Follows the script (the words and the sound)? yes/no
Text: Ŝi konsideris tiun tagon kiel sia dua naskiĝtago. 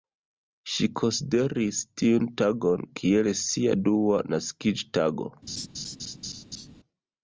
no